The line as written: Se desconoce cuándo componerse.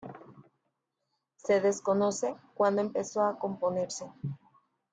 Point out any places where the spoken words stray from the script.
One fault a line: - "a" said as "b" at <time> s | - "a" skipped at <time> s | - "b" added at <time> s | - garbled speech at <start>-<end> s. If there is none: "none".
- "empezó a" added at 2.8 s